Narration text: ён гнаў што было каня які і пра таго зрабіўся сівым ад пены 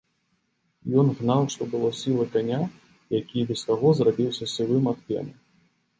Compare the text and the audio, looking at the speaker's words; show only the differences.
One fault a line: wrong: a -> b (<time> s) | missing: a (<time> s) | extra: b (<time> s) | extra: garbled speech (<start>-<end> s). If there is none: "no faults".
extra: сілы (2.0 s)
wrong: пра -> без (3.5 s)